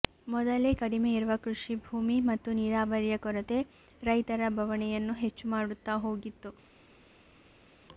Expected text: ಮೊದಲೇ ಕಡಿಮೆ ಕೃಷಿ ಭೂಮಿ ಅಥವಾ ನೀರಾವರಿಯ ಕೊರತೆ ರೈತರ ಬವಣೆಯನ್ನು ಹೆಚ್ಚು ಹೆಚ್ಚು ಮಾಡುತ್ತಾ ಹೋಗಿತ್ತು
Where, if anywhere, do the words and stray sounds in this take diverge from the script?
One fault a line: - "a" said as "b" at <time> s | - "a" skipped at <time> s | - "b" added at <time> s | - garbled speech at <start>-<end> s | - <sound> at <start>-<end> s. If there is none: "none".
- "ಇರುವ" added at 1.1 s
- "ಅಥವಾ" said as "ಮತ್ತು" at 2.3 s
- "ಹೆಚ್ಚು" skipped at 5.5 s